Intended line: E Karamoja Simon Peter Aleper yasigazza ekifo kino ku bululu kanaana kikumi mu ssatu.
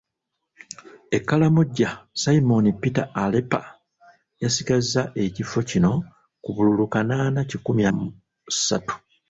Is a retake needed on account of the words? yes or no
no